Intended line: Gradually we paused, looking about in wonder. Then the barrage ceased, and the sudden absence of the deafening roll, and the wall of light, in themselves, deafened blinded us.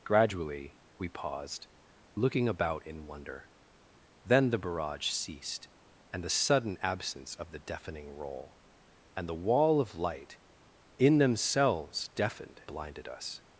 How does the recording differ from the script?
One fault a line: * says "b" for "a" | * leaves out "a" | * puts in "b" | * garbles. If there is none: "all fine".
all fine